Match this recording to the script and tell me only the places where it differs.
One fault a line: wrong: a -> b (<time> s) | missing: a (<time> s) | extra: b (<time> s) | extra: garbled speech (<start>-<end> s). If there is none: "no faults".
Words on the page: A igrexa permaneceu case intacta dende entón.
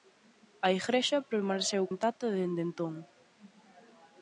missing: case (1.8 s)